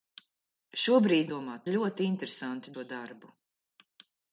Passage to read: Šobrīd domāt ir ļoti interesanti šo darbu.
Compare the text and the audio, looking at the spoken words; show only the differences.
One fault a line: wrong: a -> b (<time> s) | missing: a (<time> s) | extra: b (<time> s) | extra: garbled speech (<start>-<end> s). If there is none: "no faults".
no faults